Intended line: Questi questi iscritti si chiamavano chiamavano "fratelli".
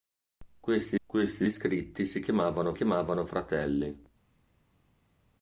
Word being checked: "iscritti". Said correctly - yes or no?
yes